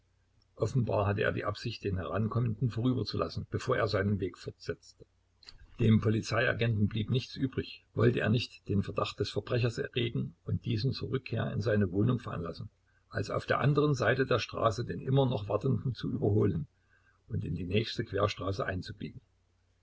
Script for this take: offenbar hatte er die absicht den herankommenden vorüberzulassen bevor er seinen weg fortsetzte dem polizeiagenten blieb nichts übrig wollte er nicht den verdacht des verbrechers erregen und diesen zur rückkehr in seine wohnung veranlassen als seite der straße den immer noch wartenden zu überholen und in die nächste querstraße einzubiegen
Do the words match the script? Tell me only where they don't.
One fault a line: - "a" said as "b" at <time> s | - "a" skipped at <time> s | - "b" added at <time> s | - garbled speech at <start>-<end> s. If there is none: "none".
- "auf der anderen" added at 13.3 s